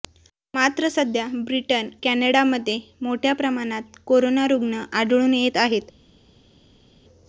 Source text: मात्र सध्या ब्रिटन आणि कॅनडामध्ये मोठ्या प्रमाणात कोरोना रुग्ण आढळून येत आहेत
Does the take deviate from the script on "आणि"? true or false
true